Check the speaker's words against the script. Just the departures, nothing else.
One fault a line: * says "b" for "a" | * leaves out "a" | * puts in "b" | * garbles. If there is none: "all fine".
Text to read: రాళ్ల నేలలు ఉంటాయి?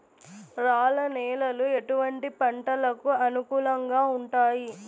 * puts in "ఎటువంటి పంటలకు అనుకూలంగా"